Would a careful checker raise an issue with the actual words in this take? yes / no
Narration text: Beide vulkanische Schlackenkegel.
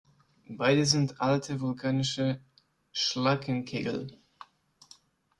yes